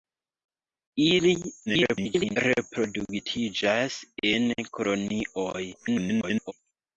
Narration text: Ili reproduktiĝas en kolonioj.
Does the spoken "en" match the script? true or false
true